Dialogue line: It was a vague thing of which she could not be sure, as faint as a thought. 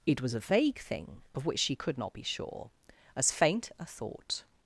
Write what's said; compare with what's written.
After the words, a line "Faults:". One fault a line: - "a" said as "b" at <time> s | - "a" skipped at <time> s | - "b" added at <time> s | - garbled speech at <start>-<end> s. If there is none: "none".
It was a vague thing of which she could not be sure, as faint a thought.
Faults:
- "as" skipped at 3.7 s